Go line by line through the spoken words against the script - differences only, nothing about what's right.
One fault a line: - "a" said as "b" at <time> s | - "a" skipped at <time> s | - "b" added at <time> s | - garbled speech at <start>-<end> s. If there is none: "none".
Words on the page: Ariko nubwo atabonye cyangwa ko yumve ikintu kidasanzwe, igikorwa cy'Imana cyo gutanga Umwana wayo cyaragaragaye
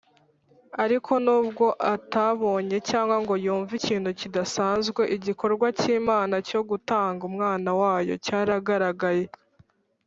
- "ko" said as "ngo" at 3.2 s